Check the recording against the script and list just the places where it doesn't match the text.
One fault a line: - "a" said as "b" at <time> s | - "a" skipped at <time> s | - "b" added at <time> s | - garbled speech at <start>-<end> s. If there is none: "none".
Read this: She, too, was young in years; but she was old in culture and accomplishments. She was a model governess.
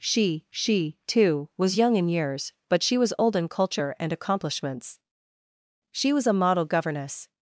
- "she" added at 0.5 s